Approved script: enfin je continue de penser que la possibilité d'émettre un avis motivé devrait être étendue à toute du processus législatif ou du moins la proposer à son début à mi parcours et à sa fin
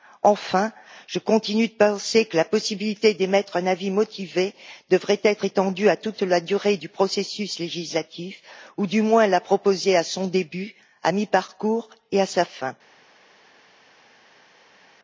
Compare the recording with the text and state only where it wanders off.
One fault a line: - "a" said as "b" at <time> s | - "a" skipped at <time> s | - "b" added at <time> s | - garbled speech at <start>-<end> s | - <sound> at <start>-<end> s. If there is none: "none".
- "la durée" added at 6.2 s